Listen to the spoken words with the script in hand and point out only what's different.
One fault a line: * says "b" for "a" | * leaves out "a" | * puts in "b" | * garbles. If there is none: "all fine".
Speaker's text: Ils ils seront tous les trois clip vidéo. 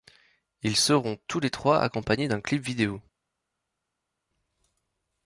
* leaves out "ils"
* puts in "accompagnés d'un"